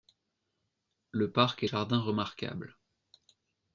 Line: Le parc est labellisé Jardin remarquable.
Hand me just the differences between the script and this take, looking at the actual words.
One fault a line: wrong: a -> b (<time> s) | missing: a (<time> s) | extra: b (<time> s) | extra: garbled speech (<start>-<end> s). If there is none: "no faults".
missing: labellisé (1.7 s)